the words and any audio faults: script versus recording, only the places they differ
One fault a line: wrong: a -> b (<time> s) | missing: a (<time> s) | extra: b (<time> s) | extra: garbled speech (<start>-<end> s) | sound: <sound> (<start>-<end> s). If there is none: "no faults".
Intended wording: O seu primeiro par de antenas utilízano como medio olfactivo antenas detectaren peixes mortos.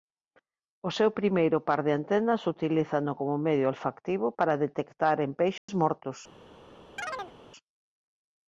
wrong: antenas -> para (4.4 s)
sound: dropout (5.6-5.7 s)
sound: chirp (7.0-7.3 s)